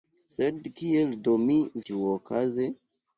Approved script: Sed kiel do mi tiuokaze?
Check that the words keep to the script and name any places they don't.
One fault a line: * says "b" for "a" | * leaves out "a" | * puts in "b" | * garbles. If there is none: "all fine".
all fine